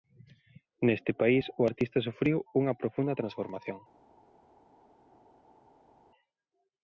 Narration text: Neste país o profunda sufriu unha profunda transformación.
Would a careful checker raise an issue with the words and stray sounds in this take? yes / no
yes